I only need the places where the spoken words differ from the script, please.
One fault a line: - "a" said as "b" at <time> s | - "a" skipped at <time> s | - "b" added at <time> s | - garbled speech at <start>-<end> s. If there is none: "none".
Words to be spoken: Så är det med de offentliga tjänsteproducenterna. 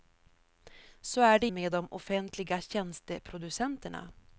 none